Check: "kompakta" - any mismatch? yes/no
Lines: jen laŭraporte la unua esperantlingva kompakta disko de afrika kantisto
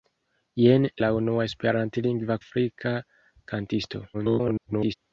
yes